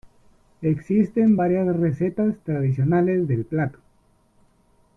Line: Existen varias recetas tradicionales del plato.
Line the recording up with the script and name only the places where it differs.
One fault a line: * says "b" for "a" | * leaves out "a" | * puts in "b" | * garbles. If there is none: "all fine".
all fine